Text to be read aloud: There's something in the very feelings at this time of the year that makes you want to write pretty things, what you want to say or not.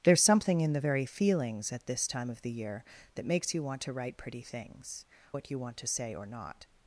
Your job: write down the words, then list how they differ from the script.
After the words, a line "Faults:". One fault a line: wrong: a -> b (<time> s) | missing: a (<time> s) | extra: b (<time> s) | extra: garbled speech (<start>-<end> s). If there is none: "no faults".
There's something in the very feelings at this time of the year that makes you want to write pretty things, what you want to say or not.
Faults:
no faults